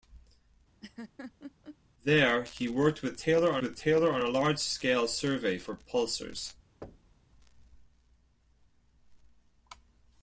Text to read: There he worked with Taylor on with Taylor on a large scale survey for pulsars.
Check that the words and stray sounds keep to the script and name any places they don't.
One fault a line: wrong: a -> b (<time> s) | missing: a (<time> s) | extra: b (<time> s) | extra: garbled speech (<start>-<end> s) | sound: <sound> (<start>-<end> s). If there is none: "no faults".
sound: laugh (0.8-1.8 s)
sound: thud (6.8-7.3 s)